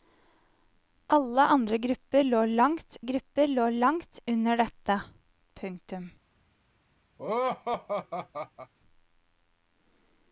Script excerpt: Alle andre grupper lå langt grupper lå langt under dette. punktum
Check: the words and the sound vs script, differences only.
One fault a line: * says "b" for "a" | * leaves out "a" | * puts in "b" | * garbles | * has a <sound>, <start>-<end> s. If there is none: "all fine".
* has a laugh, 7.2-8.7 s